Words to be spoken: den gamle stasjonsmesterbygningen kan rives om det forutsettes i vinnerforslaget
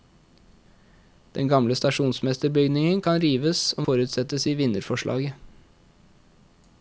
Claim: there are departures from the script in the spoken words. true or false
true